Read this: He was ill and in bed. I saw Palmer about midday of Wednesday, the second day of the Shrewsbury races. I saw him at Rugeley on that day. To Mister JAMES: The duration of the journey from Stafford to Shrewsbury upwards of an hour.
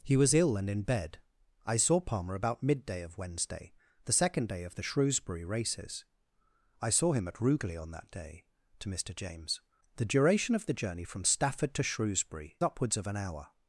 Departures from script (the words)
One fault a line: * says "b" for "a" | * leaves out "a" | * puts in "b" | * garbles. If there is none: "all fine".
all fine